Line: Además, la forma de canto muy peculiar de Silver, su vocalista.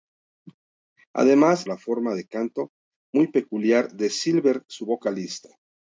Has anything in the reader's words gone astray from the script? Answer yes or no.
no